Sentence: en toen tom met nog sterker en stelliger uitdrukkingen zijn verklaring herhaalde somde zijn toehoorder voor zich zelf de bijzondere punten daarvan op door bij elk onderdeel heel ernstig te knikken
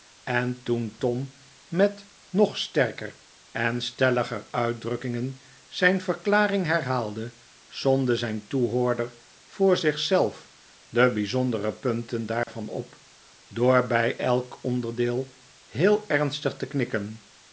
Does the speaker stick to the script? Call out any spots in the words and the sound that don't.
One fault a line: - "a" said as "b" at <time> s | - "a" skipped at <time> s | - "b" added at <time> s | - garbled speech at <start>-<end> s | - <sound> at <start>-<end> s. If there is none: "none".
- dropout at 12.4-12.5 s